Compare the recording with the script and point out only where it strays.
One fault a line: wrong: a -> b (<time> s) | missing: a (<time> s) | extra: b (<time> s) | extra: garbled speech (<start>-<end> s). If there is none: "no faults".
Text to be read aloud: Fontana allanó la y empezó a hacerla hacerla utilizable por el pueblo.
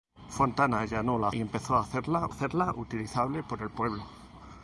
no faults